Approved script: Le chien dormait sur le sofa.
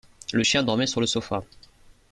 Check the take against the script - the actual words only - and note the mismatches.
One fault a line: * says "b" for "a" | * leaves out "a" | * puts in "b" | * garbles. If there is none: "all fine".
all fine